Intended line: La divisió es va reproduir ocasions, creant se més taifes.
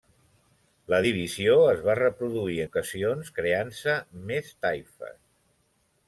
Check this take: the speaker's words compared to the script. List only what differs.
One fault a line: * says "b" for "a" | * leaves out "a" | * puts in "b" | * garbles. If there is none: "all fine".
all fine